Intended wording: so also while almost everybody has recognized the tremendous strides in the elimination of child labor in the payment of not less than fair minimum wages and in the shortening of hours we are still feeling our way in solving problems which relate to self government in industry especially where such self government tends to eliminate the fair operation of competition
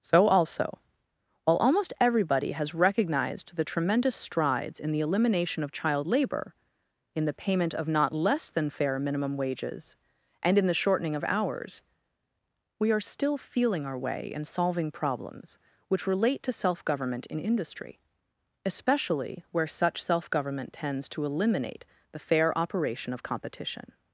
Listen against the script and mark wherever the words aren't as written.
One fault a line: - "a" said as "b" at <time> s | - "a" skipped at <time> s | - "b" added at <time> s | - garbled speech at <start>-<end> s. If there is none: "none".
none